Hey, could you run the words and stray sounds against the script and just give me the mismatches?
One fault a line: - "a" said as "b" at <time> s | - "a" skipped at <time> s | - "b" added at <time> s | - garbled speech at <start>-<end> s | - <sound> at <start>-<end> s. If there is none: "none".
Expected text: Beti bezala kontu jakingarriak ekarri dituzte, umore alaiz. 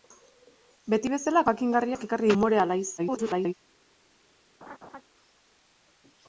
- "kontu" skipped at 1.4 s
- "dituzte" skipped at 2.3 s
- garbled speech at 3.0-3.5 s
- laugh at 4.6-5.0 s